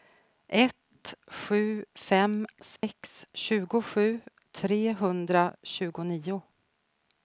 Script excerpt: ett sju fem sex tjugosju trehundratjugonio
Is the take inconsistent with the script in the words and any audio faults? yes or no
yes